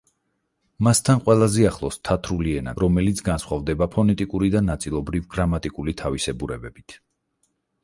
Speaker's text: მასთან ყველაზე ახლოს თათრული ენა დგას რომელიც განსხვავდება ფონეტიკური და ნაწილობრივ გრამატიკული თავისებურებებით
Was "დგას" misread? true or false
true